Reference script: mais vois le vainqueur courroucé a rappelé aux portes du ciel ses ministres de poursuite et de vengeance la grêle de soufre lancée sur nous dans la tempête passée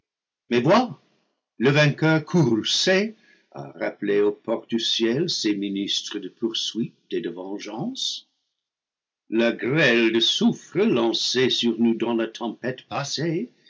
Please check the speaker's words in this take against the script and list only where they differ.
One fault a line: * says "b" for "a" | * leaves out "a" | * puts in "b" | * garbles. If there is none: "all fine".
all fine